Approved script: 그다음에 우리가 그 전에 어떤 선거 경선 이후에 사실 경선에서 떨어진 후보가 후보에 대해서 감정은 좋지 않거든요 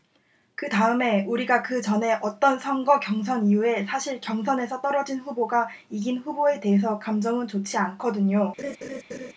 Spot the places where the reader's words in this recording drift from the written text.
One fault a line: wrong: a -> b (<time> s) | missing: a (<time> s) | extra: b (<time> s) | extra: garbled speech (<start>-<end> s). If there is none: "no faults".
extra: 이긴 (5.9 s)